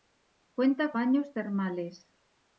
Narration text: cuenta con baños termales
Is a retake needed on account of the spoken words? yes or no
yes